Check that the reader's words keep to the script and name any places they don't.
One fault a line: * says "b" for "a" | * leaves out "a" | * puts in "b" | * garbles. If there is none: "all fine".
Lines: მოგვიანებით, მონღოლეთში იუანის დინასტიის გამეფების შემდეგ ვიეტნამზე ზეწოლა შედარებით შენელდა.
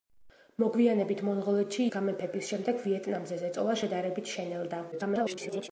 * leaves out "იუანის დინასტიის"
* garbles